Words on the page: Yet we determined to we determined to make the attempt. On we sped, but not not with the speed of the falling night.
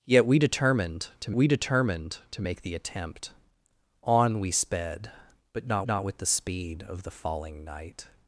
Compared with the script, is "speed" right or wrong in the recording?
right